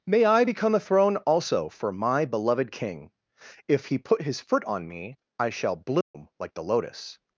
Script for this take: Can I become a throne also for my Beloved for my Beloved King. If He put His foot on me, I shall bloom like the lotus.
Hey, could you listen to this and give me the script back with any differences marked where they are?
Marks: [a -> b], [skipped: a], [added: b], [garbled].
[Can -> May] I become a throne also for my Beloved [skipped: for my Beloved] King. If He put His foot on me, I shall bloom like the lotus.